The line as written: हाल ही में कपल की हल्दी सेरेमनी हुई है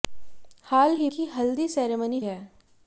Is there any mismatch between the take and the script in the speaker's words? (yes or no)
yes